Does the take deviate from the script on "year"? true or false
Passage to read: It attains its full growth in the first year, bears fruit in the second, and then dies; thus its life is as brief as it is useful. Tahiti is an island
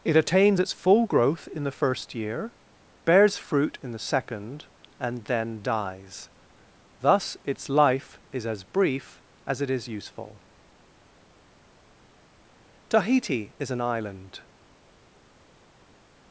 false